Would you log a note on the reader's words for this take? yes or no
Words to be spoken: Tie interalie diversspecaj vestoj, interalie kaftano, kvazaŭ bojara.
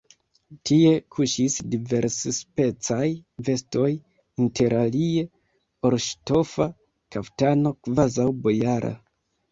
yes